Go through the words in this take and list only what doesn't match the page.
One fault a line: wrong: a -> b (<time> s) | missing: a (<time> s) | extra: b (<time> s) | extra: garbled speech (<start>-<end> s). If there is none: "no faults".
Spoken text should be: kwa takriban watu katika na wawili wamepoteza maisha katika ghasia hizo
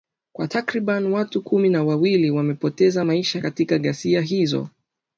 wrong: katika -> kumi (1.4 s)